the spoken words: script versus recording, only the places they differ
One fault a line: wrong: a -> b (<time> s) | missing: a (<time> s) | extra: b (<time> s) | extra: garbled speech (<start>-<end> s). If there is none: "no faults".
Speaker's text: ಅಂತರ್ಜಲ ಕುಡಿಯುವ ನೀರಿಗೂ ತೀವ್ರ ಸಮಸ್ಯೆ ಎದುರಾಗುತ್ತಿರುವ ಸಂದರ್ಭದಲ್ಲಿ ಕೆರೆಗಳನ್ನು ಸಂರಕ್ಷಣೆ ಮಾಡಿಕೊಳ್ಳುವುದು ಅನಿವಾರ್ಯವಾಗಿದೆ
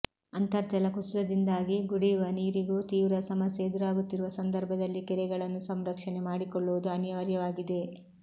extra: ಕುಸಿತದಿಂದಾಗಿ (0.9 s)